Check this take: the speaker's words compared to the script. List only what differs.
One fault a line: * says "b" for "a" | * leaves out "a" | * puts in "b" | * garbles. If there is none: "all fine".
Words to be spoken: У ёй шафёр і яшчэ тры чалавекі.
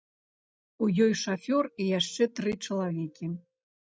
all fine